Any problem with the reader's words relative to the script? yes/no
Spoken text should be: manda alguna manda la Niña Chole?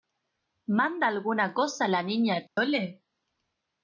yes